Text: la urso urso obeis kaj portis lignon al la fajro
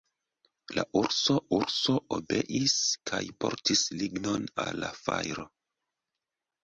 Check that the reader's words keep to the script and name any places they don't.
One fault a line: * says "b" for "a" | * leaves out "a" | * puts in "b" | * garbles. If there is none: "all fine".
all fine